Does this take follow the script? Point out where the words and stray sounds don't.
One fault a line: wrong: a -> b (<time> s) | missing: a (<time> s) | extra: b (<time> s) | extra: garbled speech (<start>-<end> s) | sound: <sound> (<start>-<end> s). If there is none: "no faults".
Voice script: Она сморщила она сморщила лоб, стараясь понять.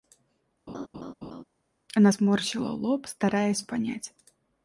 sound: laugh (0.7-1.4 s)
missing: она сморщила (2.7 s)